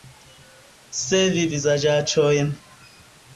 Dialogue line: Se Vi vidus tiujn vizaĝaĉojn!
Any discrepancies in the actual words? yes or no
yes